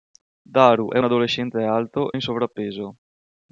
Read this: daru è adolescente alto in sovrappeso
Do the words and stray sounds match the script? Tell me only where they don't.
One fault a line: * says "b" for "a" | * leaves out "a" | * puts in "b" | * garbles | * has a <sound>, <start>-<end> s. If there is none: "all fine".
all fine